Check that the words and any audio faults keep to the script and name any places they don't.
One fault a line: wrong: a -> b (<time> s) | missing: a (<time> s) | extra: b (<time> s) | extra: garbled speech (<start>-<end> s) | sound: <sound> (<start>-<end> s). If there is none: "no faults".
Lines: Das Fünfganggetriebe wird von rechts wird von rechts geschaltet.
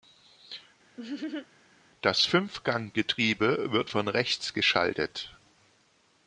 sound: laugh (1.0-1.5 s)
missing: wird von rechts (4.5 s)